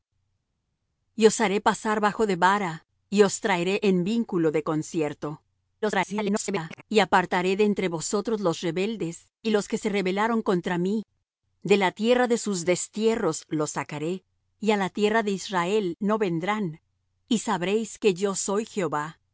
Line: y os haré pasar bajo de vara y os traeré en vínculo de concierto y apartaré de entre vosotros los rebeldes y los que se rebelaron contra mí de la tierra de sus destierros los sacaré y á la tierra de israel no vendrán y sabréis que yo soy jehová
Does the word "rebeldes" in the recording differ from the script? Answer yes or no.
no